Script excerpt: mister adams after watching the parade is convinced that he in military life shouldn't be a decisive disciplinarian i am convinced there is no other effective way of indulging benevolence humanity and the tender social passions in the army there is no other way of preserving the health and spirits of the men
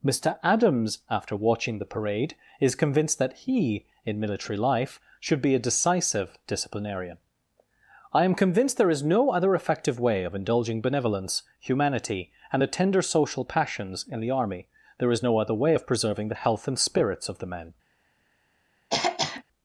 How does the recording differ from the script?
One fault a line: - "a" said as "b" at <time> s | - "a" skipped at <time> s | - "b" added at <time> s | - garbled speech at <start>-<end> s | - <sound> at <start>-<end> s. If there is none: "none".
- "shouldn't" said as "should" at 5.2 s
- throat clearing at 18.9-19.4 s